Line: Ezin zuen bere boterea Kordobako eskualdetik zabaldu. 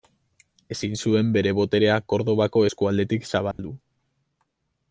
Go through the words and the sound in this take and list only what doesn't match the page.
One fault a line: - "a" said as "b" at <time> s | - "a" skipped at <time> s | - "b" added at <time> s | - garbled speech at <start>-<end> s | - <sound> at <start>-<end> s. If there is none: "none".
- dropout at 3.5-3.6 s